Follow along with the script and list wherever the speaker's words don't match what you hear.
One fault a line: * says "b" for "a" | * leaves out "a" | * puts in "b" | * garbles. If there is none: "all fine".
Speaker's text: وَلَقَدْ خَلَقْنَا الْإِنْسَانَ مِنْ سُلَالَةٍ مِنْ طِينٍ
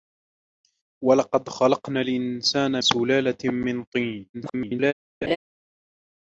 * leaves out "مِنْ"
* garbles